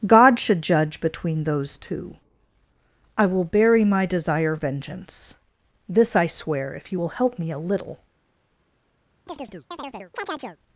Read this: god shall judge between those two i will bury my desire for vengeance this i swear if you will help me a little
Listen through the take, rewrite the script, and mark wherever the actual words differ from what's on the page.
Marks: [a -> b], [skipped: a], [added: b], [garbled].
god [shall -> should] judge between those two i will bury my desire [skipped: for] vengeance this i swear if you will help me a little